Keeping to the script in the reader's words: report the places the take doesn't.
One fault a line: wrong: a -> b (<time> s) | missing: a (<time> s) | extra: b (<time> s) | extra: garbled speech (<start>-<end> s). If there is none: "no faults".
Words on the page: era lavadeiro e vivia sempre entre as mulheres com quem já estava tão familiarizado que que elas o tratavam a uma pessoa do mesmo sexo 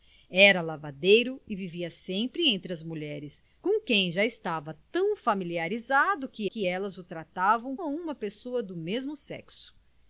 no faults